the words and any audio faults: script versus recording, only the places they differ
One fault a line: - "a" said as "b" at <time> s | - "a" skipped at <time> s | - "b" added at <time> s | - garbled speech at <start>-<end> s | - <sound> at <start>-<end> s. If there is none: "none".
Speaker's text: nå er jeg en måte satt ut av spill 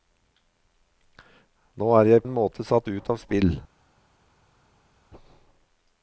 none